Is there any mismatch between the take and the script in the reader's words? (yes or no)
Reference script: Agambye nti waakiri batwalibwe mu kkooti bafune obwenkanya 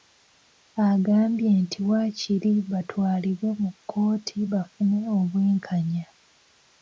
no